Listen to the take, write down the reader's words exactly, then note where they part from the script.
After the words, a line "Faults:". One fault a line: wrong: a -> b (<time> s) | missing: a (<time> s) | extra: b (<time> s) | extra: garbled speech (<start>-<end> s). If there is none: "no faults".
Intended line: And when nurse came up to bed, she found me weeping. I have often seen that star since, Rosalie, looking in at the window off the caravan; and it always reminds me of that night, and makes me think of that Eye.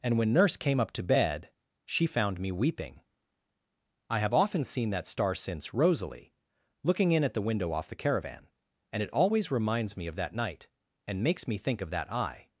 And when nurse came up to bed, she found me weeping. I have often seen that star since, Rosalie, looking in at the window off the caravan; and it always reminds me of that night, and makes me think of that Eye.
Faults:
no faults